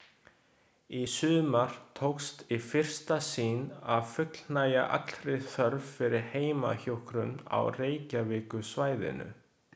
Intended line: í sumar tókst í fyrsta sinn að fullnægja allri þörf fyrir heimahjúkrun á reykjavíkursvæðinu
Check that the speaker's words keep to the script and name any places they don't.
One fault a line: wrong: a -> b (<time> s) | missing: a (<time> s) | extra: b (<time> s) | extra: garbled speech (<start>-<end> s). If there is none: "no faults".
no faults